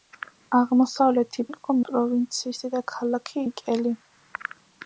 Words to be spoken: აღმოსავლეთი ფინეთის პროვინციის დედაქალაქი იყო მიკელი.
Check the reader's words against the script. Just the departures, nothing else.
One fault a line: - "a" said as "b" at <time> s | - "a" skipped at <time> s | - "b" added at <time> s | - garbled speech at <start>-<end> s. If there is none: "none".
- "ფინეთის" said as "იყო" at 1.5 s
- "იყო" skipped at 3.4 s